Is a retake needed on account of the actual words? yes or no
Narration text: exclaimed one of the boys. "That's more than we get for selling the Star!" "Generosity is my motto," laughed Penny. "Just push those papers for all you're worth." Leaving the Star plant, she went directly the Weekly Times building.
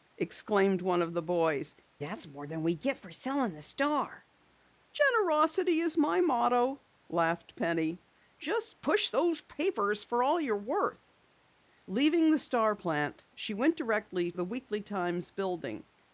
no